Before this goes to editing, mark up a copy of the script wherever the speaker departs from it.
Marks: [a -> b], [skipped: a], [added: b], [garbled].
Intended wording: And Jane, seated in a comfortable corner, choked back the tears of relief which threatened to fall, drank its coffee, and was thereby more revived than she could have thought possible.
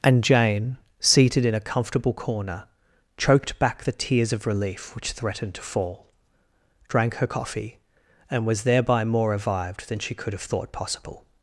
And Jane, seated in a comfortable corner, choked back the tears of relief which threatened to fall, drank [its -> her] coffee, and was thereby more revived than she could have thought possible.